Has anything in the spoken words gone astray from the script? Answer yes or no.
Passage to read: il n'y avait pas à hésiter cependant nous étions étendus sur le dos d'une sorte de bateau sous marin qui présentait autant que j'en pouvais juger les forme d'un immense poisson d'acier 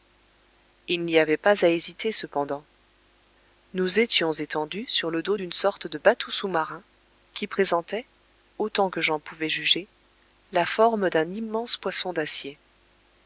yes